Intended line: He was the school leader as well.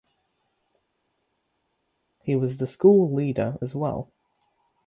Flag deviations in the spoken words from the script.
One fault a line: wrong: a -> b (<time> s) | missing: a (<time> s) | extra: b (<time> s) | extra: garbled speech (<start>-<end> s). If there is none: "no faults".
no faults